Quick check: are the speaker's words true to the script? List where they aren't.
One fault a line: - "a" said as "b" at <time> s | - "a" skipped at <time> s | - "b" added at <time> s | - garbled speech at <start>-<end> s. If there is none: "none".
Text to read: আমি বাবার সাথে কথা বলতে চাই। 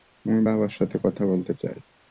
none